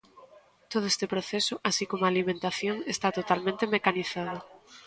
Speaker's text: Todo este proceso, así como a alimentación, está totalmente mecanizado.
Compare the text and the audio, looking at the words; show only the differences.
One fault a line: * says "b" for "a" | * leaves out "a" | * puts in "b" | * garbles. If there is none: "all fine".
all fine